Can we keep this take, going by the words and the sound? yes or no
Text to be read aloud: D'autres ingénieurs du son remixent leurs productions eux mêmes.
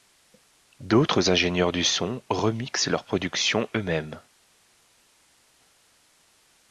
yes